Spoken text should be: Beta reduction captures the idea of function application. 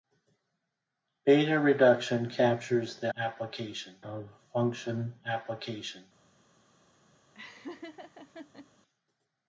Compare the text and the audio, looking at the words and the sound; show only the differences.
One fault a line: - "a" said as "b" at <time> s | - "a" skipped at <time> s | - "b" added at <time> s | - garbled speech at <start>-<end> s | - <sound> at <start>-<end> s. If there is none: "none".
- "idea" said as "application" at 3.2 s
- laugh at 7.3-8.7 s